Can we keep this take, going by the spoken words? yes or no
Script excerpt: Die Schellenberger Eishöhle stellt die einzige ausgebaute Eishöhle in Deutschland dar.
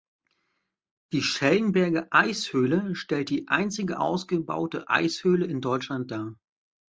yes